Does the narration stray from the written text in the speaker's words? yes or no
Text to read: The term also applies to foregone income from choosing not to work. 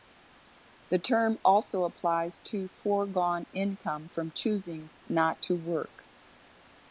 no